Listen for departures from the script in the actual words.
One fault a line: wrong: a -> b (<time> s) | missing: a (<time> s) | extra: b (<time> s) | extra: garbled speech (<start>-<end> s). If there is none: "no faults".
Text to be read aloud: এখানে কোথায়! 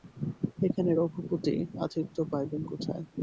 extra: রঘুপতি আতিথ্য পাইবেন (0.9 s)